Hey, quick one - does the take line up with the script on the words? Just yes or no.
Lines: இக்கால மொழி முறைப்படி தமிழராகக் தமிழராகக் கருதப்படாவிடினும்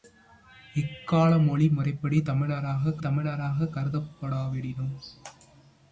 yes